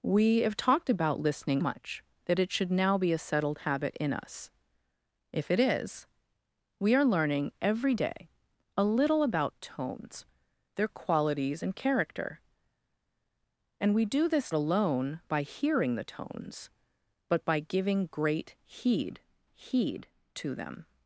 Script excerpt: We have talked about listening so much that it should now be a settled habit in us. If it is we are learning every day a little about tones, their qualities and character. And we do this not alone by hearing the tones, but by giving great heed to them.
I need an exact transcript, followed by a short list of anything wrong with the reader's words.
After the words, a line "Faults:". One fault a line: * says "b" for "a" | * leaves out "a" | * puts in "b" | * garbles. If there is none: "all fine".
We have talked about listening much that it should now be a settled habit in us. If it is we are learning every day a little about tones, their qualities and character. And we do this alone by hearing the tones, but by giving great heed heed to them.
Faults:
* leaves out "so"
* leaves out "not"
* puts in "heed"